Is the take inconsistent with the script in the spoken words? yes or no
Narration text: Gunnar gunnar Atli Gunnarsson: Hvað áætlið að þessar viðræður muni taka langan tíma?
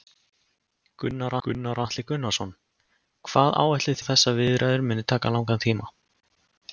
no